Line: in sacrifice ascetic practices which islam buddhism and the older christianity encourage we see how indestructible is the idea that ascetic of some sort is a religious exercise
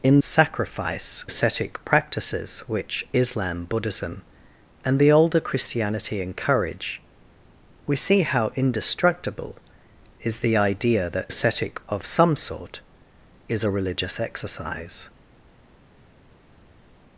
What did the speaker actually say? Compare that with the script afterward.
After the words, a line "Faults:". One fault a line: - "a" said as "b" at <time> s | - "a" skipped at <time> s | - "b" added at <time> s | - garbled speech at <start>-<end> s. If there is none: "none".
in sacrifice ascetic practices which islam buddhism and the older christianity encourage we see how indestructible is the idea that ascetic of some sort is a religious exercise
Faults:
none